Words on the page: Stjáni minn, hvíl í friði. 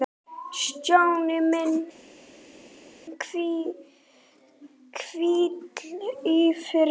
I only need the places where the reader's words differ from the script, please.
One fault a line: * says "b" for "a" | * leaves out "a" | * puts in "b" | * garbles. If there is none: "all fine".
all fine